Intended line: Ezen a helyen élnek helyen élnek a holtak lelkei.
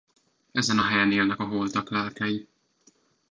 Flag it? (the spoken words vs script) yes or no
yes